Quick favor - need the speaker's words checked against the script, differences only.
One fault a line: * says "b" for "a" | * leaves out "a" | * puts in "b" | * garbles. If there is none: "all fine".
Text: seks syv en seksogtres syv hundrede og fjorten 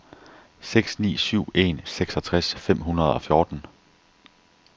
* puts in "ni"
* says "fem" for "syv"